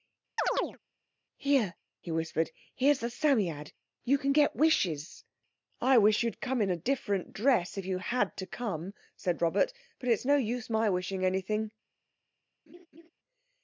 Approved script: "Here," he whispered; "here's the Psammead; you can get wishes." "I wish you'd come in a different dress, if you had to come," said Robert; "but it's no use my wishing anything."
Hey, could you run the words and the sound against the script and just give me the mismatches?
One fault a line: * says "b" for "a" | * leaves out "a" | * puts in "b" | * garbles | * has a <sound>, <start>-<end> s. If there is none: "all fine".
* has a chirp, 0.4-0.8 s
* has a laugh, 12.7-13.1 s